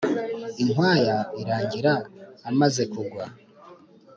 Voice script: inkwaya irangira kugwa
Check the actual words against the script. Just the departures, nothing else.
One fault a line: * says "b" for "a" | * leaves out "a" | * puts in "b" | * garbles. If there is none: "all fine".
* puts in "amaze"